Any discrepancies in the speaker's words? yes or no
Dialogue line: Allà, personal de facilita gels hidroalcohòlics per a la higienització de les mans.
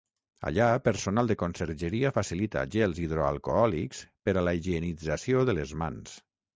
yes